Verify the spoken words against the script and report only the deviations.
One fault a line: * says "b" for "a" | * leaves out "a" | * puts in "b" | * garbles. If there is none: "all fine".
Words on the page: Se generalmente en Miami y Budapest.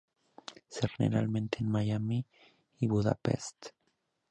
all fine